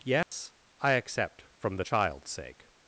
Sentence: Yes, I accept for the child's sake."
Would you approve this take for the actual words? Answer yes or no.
no